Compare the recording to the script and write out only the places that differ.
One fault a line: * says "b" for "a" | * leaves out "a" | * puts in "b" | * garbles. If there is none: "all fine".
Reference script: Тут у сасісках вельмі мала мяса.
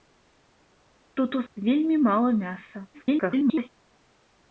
* leaves out "сасісках"
* garbles